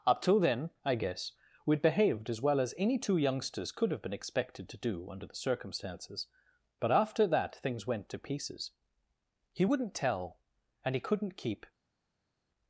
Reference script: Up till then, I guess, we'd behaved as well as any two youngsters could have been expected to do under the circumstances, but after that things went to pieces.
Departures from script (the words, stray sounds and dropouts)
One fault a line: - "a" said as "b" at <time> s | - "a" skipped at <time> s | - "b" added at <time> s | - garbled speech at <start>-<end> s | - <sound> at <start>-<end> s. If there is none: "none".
- "He wouldn't tell and he couldn't keep" added at 9.5 s